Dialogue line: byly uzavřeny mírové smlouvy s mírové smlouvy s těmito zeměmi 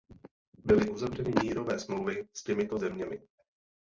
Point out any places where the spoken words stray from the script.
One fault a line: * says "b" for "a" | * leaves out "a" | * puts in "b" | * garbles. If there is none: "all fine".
* leaves out "mírové smlouvy s"